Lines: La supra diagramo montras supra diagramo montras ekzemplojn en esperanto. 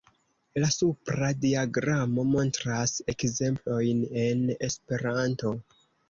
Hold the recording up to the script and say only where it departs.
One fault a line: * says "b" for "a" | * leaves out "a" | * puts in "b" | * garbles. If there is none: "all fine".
* leaves out "supra diagramo montras"